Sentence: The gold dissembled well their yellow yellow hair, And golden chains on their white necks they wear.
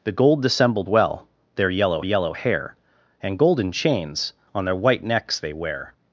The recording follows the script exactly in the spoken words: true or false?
true